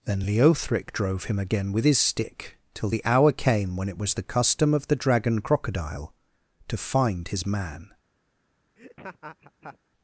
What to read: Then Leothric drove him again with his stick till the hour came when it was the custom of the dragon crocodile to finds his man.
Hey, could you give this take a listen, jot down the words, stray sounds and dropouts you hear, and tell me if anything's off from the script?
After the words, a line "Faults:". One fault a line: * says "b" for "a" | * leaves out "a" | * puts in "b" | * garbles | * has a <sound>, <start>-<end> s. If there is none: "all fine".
Then Leothric drove him again with his stick till the hour came when it was the custom of the dragon crocodile to find his man.
Faults:
* says "find" for "finds"
* has a laugh, 8.8-9.8 s